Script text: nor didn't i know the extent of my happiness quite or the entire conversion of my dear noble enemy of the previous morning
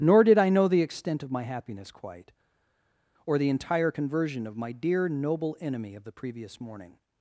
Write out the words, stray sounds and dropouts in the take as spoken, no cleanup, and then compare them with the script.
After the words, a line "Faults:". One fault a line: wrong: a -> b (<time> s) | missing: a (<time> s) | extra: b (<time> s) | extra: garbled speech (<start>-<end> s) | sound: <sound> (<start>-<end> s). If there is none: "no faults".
nor did i know the extent of my happiness quite or the entire conversion of my dear noble enemy of the previous morning
Faults:
wrong: didn't -> did (0.2 s)